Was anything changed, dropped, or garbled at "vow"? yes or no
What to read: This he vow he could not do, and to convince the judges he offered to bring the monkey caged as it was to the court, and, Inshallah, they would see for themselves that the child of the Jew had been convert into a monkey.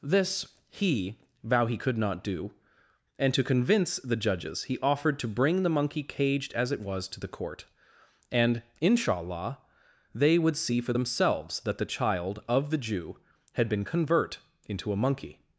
no